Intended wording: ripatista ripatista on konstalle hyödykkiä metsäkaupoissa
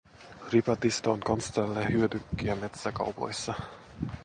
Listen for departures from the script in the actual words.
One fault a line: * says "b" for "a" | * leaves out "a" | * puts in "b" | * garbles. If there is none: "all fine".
* leaves out "ripatista"